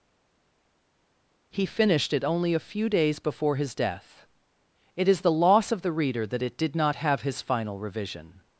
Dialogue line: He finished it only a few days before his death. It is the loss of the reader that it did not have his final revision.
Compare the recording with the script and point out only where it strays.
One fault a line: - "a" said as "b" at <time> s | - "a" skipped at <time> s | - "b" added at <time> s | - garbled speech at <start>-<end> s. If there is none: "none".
none